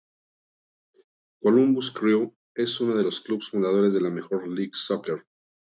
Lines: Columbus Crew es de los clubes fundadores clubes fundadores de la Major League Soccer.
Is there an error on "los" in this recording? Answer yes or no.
no